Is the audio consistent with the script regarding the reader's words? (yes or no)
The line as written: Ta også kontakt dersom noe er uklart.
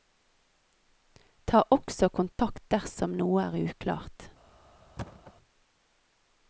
yes